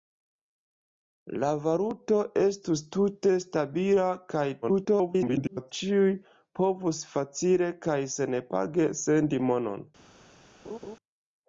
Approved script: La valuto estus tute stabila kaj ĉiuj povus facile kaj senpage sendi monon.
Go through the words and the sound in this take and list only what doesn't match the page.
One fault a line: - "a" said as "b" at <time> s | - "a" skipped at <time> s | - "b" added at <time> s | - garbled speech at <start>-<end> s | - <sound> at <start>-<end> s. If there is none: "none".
- garbled speech at 4.6-5.7 s
- laugh at 10.6-11.0 s